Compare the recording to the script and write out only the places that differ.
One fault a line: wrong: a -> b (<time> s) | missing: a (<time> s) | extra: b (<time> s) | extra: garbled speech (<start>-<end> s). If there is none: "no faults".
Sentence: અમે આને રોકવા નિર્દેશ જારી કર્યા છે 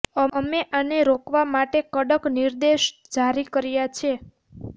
extra: માટે કડક (1.5 s)